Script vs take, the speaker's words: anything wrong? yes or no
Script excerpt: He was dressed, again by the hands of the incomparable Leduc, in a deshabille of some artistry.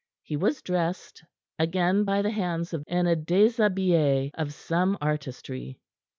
yes